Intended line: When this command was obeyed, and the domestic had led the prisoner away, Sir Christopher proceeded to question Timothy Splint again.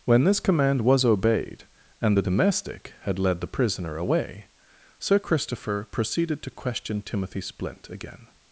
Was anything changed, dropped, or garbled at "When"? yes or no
no